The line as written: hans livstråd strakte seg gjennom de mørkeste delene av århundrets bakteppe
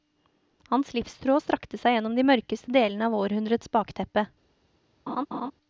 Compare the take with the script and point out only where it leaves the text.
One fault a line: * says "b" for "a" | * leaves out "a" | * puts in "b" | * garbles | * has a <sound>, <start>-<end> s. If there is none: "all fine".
* has a laugh, 5.1-5.5 s